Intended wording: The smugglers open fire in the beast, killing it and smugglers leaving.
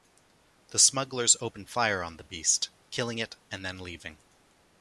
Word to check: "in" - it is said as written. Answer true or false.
false